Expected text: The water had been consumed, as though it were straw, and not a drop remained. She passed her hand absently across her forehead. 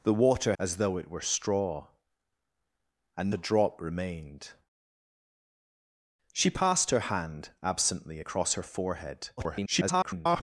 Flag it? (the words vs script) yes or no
yes